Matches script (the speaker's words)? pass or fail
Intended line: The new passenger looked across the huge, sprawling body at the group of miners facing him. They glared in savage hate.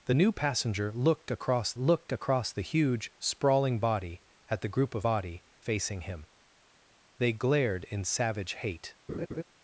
fail